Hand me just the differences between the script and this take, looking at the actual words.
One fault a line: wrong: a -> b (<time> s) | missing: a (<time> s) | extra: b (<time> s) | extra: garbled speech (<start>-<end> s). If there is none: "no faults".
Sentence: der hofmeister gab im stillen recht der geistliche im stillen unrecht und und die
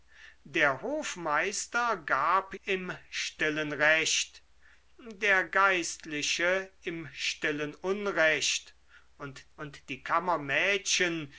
no faults